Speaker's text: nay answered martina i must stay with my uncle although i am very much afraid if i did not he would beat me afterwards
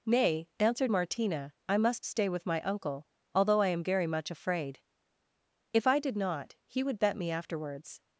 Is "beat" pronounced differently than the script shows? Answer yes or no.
yes